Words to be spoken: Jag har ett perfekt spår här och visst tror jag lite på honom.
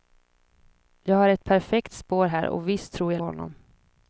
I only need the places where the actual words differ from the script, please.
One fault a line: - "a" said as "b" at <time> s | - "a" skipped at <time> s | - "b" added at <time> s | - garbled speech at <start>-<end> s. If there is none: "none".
- "lite på" skipped at 3.2 s